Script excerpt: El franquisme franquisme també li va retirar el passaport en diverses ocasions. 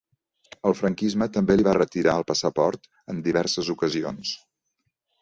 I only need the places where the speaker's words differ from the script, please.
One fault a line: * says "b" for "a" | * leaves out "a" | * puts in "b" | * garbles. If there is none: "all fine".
* leaves out "franquisme"